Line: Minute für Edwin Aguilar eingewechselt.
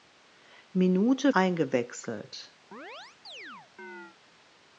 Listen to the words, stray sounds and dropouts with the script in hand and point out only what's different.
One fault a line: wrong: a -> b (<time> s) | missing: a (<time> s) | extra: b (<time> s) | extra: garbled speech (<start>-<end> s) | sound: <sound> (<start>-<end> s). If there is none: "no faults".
missing: für Edwin Aguilar (1.3 s)
sound: chirp (2.7-4.2 s)